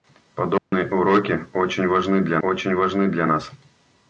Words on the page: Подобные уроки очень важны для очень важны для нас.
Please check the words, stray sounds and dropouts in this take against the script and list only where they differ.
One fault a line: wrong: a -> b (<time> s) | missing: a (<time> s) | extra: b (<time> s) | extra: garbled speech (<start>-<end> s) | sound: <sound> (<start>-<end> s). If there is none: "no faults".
sound: dropout (0.6-0.7 s)